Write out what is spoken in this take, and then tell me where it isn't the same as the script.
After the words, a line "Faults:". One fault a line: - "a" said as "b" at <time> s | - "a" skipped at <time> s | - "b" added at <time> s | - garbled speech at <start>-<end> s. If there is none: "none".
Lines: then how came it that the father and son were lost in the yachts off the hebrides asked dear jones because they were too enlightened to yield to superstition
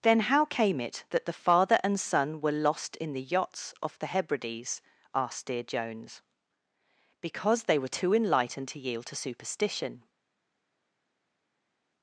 then how came it that the father and son were lost in the yachts off the hebrides asked dear jones because they were too enlightened to yield to superstition
Faults:
none